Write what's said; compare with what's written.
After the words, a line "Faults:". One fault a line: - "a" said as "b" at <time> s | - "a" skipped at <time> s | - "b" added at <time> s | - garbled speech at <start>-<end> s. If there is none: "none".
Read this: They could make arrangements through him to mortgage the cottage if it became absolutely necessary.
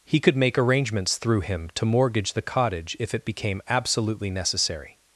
He could make arrangements through him to mortgage the cottage if it became absolutely necessary.
Faults:
- "They" said as "He" at 0.1 s